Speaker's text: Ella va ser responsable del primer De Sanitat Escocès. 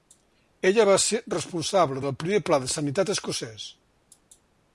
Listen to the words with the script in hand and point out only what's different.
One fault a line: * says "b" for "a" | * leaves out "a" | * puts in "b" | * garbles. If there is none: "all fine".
* puts in "Pla"